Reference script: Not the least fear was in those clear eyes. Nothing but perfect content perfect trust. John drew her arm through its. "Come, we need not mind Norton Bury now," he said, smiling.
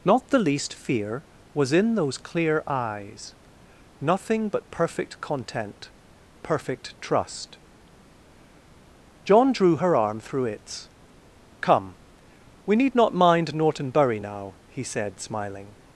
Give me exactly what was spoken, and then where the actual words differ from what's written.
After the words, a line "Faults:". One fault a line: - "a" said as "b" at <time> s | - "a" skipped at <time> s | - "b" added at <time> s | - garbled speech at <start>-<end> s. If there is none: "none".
Not the least fear was in those clear eyes. Nothing but perfect content perfect trust. John drew her arm through its. "Come, we need not mind Norton Bury now," he said, smiling.
Faults:
none